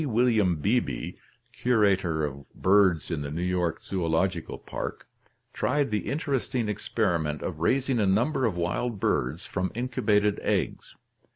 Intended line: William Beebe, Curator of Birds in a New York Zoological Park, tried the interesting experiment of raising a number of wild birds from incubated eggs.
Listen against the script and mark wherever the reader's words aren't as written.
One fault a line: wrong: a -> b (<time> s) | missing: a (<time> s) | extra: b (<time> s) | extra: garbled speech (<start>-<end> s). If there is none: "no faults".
wrong: a -> the (3.2 s)